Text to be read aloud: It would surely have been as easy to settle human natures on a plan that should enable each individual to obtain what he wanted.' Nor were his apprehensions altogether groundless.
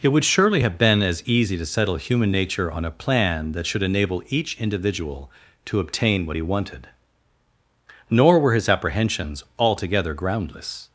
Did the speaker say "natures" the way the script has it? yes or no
no